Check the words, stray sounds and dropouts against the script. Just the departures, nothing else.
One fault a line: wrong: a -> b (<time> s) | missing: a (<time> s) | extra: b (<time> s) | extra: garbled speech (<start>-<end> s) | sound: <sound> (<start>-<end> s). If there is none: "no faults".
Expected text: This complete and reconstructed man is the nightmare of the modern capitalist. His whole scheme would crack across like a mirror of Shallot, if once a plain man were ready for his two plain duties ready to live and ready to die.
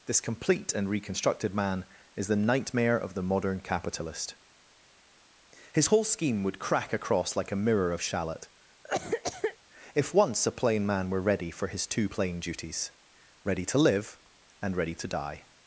sound: cough (8.8-9.6 s)